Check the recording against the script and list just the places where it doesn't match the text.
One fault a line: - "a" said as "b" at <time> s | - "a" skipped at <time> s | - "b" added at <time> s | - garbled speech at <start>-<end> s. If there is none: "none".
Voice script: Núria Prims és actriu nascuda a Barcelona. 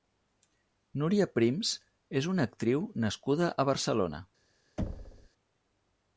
- "una" added at 2.3 s